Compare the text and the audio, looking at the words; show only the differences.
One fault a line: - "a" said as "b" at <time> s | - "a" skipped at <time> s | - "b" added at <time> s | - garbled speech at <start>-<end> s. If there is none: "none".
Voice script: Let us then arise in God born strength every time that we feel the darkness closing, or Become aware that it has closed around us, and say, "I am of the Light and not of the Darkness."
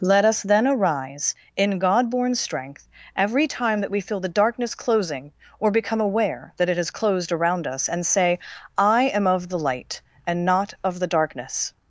none